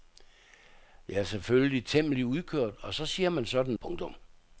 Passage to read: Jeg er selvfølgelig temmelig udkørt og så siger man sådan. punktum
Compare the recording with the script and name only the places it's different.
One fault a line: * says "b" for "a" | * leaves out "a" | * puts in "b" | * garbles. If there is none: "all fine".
all fine